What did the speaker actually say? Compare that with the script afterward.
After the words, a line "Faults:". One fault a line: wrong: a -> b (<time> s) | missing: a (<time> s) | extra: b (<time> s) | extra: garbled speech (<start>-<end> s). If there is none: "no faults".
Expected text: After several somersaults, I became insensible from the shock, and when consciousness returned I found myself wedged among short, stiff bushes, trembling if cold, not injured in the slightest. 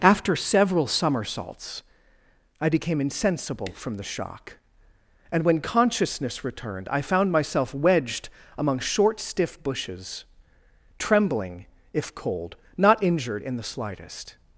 After several somersaults, I became insensible from the shock, and when consciousness returned I found myself wedged among short, stiff bushes, trembling if cold, not injured in the slightest.
Faults:
no faults